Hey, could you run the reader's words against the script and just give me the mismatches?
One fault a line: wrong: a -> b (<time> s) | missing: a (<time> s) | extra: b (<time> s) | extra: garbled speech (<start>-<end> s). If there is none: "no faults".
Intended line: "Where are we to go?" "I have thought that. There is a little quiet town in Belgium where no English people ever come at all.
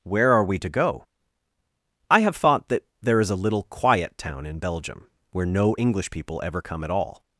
no faults